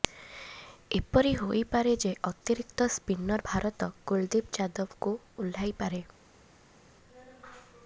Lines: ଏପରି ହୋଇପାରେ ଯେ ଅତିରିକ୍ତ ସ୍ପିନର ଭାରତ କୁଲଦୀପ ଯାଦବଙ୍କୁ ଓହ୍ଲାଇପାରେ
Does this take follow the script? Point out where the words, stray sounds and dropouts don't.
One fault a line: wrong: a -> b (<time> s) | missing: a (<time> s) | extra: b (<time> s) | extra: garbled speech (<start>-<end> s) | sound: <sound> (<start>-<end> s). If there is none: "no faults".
no faults